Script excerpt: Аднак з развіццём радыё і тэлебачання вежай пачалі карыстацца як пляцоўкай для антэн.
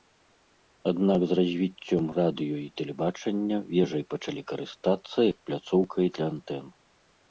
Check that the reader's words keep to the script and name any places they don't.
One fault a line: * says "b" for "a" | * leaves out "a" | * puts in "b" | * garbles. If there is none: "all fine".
all fine